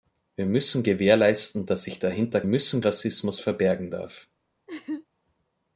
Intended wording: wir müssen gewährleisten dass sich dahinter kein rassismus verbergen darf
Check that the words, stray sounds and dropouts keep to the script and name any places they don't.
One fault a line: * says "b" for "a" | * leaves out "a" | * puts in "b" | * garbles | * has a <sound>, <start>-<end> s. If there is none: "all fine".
* says "müssen" for "kein"
* has a laugh, 4.7-5.1 s